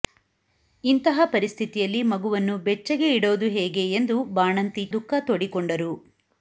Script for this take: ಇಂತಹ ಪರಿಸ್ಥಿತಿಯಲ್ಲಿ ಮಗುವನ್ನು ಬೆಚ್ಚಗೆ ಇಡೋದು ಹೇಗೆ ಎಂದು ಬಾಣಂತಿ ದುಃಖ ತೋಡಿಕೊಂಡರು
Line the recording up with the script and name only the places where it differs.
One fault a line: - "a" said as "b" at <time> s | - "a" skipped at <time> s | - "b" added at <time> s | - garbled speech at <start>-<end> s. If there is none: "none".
none